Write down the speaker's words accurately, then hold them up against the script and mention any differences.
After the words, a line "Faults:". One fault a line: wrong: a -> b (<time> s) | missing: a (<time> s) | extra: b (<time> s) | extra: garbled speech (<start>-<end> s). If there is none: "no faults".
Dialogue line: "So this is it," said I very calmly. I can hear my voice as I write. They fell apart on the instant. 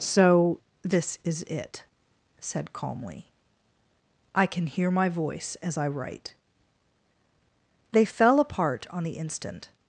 "So this is it," said calmly. I can hear my voice as I write. They fell apart on the instant.
Faults:
missing: I very (2.7 s)